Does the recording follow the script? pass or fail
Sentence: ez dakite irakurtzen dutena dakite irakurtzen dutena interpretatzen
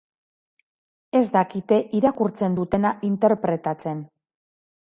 fail